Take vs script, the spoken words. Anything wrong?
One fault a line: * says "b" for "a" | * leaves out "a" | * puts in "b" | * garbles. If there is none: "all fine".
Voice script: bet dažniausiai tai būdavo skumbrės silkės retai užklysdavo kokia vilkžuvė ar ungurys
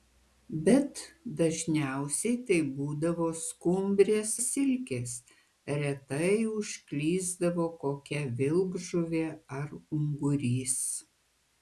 all fine